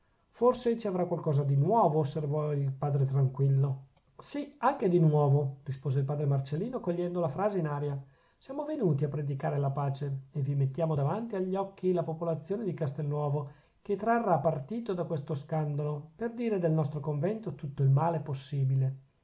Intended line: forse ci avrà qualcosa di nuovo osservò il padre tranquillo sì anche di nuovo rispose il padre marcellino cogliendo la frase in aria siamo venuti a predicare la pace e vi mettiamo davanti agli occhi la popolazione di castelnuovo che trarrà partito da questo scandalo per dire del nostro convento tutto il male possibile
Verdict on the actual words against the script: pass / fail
pass